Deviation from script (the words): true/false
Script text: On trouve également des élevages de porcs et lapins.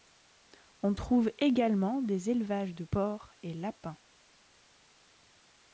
false